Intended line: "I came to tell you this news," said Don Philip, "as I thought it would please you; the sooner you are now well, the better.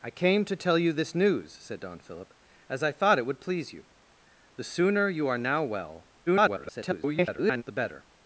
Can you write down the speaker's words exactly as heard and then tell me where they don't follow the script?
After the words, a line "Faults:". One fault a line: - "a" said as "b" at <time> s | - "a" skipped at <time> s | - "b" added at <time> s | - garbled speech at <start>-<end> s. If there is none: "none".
"I came to tell you this news," said Don Philip, "as I thought it would please you; the sooner you are now well, [garbled] the better.
Faults:
- garbled speech at 6.3-7.6 s